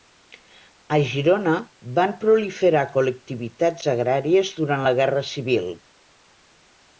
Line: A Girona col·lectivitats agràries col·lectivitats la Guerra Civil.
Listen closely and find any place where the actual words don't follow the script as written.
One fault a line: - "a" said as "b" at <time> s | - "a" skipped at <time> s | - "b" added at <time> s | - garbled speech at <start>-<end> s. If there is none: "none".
- "van proliferar" added at 2.0 s
- "col·lectivitats" said as "durant" at 4.6 s